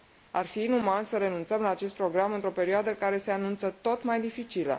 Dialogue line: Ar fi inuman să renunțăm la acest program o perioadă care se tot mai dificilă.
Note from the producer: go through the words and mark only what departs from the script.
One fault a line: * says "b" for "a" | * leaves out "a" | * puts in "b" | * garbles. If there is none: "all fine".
* puts in "într"
* puts in "anunță"